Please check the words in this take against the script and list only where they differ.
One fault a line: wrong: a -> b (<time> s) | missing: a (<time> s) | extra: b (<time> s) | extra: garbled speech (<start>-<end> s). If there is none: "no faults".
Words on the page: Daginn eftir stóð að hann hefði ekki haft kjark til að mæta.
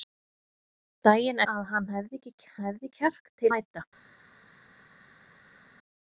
missing: eftir stóð (1.4 s)
wrong: haft -> hefði (2.6 s)
missing: að (3.5 s)